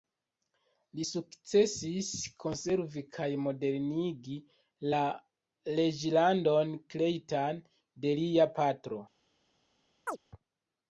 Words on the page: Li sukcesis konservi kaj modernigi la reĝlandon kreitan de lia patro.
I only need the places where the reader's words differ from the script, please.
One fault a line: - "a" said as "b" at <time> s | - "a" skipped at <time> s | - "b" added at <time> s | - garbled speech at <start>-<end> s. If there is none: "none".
none